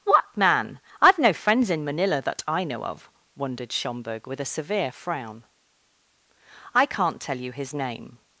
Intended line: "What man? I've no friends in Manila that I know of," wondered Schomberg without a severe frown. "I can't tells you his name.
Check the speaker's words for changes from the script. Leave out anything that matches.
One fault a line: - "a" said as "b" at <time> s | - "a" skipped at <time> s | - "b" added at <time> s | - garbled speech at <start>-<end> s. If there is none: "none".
- "without" said as "with" at 4.2 s
- "tells" said as "tell" at 7.2 s